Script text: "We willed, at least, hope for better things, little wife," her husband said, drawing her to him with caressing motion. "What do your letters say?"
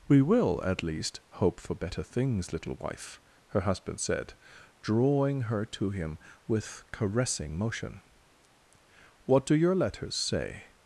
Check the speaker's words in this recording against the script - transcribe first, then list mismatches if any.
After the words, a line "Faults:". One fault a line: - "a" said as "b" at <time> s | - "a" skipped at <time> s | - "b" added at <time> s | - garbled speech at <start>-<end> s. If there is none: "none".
"We will, at least, hope for better things, little wife," her husband said, drawing her to him with caressing motion. "What do your letters say?"
Faults:
- "willed" said as "will" at 0.2 s